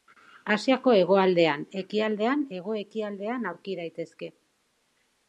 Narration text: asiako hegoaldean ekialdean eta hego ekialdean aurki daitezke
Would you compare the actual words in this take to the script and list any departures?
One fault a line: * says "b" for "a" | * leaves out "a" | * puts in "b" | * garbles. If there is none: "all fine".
* leaves out "eta"